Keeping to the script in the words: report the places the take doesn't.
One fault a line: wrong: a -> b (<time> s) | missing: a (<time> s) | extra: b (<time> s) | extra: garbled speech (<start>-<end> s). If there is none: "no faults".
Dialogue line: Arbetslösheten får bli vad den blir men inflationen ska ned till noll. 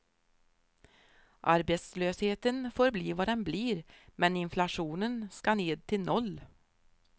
no faults